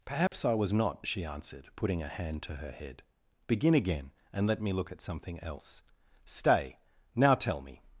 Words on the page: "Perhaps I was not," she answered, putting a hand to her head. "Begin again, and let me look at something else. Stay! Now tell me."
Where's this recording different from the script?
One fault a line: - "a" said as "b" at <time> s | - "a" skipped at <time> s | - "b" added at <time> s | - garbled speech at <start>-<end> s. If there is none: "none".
none